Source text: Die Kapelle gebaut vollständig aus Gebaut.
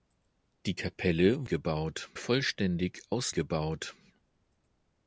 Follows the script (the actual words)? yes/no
yes